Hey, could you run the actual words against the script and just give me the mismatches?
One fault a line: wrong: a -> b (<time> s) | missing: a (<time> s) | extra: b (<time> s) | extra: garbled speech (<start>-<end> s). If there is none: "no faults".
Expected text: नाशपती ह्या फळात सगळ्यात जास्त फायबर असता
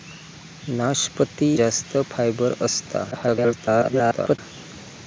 missing: ह्या फळात सगळ्यात (1.5 s)
extra: garbled speech (3.1-4.4 s)